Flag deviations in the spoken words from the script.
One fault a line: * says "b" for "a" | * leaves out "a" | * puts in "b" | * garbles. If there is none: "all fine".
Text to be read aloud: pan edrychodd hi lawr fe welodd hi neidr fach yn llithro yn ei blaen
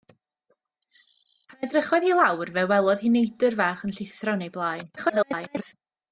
* garbles